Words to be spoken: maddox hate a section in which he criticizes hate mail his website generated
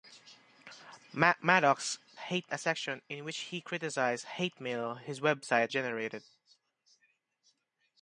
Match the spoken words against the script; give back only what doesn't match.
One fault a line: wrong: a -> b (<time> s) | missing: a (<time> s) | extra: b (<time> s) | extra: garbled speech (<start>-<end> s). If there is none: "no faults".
no faults